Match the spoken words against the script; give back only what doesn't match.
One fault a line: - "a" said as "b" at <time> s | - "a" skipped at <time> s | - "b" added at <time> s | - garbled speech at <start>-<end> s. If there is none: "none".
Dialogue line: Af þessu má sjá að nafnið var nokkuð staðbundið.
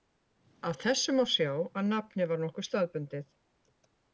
none